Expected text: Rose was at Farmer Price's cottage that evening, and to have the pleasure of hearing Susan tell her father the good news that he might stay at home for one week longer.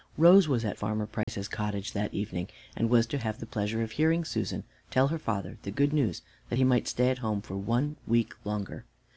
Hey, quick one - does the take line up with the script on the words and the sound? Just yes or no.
no